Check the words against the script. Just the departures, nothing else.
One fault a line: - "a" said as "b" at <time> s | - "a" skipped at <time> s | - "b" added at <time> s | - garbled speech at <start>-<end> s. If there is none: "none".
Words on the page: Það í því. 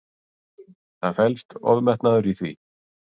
- "felst ofmetnaður" added at 1.2 s